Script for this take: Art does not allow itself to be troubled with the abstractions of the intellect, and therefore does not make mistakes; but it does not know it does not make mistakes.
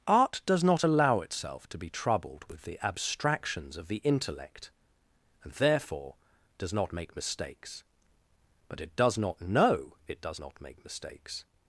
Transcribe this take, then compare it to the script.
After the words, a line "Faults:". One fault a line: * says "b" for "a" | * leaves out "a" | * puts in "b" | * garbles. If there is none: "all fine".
Art does not allow itself to be troubled with the abstractions of the intellect, and therefore does not make mistakes; but it does not know it does not make mistakes.
Faults:
all fine